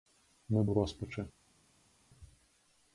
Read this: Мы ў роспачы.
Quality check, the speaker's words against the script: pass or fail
pass